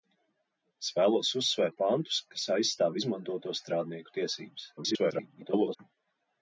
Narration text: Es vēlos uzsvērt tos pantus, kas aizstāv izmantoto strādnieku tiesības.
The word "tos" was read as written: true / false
false